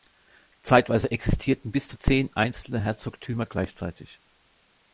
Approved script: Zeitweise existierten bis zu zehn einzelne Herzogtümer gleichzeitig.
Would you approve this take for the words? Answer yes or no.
yes